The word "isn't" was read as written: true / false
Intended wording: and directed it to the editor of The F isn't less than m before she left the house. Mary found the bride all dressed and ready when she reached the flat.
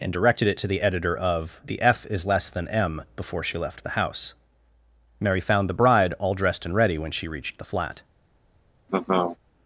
false